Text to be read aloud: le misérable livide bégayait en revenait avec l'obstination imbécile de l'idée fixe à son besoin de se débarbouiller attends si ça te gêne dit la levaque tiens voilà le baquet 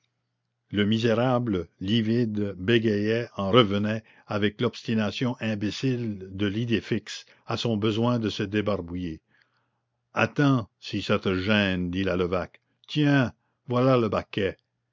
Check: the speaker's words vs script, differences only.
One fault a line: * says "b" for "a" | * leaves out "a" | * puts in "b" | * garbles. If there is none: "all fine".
all fine